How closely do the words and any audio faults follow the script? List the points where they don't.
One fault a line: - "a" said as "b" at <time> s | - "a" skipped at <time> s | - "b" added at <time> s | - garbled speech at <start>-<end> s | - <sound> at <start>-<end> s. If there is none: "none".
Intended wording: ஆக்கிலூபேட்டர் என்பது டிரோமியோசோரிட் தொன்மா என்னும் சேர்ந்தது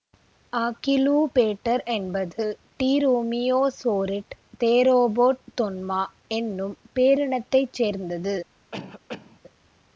- "தேரோபோட்" added at 4.6 s
- "பேரினத்தைச்" added at 7.0 s
- cough at 8.7-9.4 s